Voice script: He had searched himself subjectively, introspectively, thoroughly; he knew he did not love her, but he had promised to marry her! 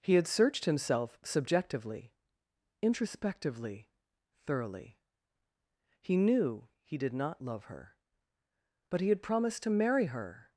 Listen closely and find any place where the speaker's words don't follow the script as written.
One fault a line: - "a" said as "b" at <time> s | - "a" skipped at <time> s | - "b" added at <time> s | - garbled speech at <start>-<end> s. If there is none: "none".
none